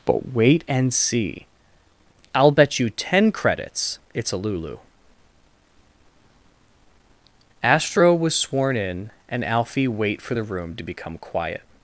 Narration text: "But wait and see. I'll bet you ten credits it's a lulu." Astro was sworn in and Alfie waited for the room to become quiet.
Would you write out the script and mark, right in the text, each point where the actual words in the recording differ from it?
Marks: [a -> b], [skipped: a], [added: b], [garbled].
"But wait and see. I'll bet you ten credits it's a lulu." Astro was sworn in and Alfie [waited -> wait] for the room to become quiet.